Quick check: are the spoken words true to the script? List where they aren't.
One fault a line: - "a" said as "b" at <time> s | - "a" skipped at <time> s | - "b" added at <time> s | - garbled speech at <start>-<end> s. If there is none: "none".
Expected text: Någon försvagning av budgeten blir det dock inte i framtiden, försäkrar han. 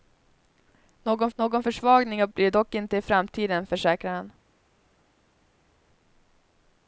- "någon" added at 1.4 s
- "budgeten" skipped at 2.3 s